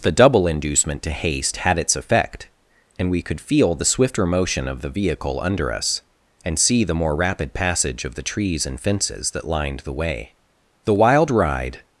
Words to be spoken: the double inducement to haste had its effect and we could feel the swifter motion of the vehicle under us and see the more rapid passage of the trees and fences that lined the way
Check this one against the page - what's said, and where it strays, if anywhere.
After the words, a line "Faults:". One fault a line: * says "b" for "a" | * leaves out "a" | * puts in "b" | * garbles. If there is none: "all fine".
the double inducement to haste had its effect and we could feel the swifter motion of the vehicle under us and see the more rapid passage of the trees and fences that lined the way the wild ride
Faults:
* puts in "the wild ride"